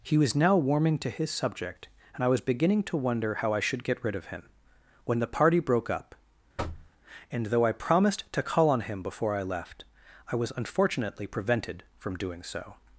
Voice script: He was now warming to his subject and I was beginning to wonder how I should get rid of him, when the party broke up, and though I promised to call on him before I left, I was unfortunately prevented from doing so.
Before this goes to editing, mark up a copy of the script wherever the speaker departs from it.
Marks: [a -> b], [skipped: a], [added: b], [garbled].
He was now warming to his subject and I was beginning to wonder how I should get rid of him, when the party broke up, and though I promised to call on him before I left, I was unfortunately prevented from doing so.